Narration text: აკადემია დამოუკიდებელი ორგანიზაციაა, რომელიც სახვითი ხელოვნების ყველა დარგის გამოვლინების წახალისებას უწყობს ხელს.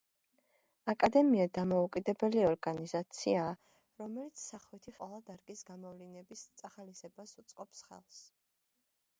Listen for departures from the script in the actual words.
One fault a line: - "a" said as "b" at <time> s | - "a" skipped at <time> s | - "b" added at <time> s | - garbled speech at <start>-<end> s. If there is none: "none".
- "ხელოვნების" skipped at 5.0 s